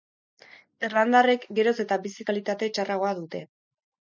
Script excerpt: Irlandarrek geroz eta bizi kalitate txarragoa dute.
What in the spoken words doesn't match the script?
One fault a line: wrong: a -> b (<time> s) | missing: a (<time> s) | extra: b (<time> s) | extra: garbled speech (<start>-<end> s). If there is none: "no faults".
no faults